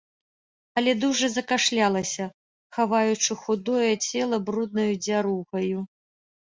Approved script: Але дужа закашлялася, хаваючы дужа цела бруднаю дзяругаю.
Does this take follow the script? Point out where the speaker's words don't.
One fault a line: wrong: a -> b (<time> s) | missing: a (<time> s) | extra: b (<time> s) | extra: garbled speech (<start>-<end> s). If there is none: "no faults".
wrong: дужа -> худое (3.5 s)